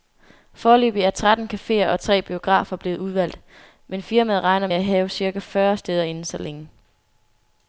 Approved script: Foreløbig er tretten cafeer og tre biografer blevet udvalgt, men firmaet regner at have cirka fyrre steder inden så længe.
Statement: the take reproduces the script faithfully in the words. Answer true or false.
true